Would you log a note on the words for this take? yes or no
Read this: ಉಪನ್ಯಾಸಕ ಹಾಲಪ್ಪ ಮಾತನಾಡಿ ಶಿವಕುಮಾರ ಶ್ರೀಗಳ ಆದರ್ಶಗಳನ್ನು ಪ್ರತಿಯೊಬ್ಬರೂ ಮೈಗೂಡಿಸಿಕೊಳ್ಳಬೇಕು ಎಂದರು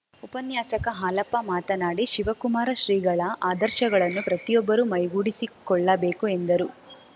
no